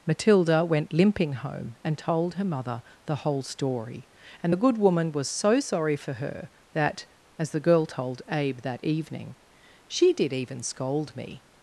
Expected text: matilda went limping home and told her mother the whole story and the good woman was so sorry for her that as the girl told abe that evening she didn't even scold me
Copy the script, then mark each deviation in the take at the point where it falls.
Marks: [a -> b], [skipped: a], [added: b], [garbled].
matilda went limping home and told her mother the whole story and the good woman was so sorry for her that as the girl told abe that evening she [didn't -> did] even scold me